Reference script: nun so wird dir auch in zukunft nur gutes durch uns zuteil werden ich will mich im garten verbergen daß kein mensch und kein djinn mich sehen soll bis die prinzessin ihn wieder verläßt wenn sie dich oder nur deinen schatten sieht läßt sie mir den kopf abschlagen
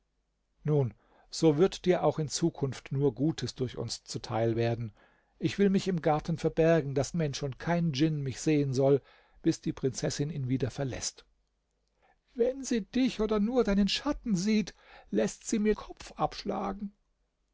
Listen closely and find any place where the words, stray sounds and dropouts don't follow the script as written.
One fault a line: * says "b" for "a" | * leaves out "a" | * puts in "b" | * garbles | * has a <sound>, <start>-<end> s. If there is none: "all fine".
* leaves out "kein"
* leaves out "den"